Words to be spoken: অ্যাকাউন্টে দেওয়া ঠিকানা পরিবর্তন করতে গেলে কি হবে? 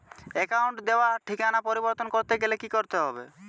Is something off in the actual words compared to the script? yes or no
yes